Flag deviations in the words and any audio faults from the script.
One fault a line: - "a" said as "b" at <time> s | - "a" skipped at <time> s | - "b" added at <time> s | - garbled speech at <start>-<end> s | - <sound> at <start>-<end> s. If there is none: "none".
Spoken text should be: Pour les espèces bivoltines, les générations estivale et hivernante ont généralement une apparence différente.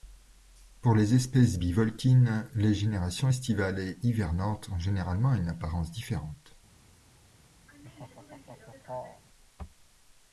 - laugh at 7.7-9.2 s